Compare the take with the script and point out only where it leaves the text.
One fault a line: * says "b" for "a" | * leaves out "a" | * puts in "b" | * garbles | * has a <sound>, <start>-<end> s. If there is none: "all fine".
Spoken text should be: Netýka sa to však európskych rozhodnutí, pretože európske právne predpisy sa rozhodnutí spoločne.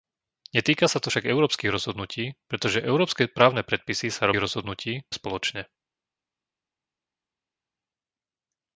all fine